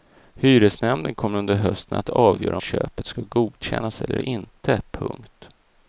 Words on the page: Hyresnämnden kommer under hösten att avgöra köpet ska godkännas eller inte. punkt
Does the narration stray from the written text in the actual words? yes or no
no